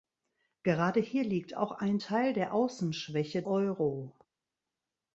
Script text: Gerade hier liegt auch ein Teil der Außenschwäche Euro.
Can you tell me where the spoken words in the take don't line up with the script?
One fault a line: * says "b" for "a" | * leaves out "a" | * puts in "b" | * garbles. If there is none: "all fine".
all fine